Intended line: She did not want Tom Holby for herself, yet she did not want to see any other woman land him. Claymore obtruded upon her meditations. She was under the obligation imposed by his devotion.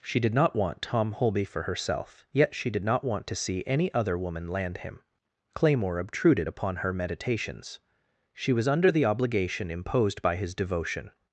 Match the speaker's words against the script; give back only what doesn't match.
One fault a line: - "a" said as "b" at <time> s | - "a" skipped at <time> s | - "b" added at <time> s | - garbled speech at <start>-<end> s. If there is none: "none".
none